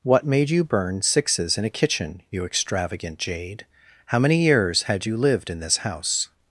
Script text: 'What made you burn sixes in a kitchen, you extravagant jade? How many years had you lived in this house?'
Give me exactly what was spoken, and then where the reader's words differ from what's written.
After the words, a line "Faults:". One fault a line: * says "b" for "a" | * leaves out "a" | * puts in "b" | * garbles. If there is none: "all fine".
'What made you burn sixes in a kitchen, you extravagant jade? How many years had you lived in this house?'
Faults:
all fine